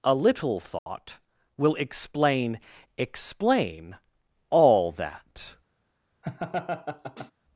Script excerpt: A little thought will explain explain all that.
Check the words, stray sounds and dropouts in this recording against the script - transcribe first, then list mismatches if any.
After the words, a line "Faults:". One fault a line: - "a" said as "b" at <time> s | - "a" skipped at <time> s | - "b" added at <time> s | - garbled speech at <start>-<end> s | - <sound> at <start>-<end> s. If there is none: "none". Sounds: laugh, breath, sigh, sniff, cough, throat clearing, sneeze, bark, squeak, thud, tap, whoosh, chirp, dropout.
A little thought will explain explain all that.
Faults:
- dropout at 0.8-0.9 s
- laugh at 6.2-7.3 s